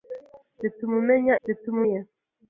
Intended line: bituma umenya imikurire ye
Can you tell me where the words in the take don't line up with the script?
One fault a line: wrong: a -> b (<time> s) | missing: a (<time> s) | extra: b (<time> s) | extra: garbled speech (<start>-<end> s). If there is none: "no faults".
wrong: imikurire -> bituma (1.5 s)